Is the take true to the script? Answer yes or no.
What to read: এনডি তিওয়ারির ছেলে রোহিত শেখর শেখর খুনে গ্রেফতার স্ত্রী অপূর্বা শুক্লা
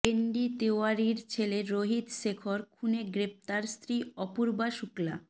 no